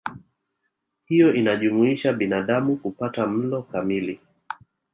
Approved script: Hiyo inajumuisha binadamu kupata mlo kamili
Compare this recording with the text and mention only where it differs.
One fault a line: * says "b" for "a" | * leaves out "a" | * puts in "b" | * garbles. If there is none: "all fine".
all fine